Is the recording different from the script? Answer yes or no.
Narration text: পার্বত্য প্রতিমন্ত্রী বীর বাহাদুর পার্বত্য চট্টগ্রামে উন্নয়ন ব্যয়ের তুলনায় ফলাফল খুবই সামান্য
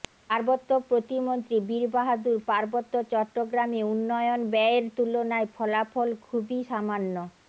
no